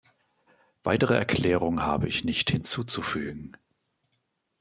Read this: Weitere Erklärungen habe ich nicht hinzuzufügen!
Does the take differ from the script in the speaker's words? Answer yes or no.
no